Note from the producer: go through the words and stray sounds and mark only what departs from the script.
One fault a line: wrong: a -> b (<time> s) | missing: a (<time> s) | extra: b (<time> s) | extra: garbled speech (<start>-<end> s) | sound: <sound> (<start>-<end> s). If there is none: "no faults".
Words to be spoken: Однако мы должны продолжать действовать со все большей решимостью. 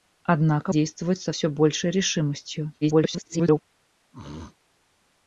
missing: мы должны продолжать (0.7 s)
extra: garbled speech (2.8-3.6 s)
sound: throat clearing (4.1-4.6 s)